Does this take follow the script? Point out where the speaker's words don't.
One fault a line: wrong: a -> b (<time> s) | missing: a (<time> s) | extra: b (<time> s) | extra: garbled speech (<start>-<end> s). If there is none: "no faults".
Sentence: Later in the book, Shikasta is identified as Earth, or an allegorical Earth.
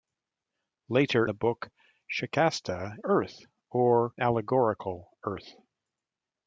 missing: in (1.3 s)
missing: is identified as (3.0 s)
missing: an (4.1 s)